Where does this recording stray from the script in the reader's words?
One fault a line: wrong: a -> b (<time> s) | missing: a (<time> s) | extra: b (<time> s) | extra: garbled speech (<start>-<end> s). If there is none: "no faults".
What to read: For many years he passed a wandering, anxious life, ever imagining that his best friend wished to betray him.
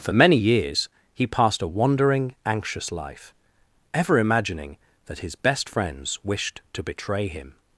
wrong: friend -> friends (5.7 s)